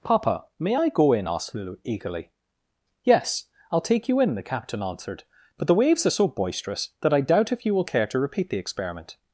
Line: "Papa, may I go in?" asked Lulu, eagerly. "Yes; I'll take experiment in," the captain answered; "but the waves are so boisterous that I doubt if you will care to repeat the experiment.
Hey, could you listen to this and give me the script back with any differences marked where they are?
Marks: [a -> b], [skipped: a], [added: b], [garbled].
"Papa, may I go in?" asked Lulu, eagerly. "Yes; I'll take [experiment -> you] in," the captain answered; "but the waves are so boisterous that I doubt if you will care to repeat the experiment.